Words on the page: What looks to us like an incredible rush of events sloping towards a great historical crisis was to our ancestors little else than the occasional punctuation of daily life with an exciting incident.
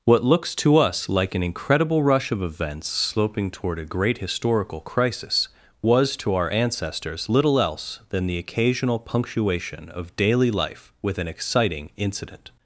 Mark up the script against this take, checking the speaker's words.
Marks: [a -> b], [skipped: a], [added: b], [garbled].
What looks to us like an incredible rush of events sloping [towards -> toward] a great historical crisis was to our ancestors little else than the occasional punctuation of daily life with an exciting incident.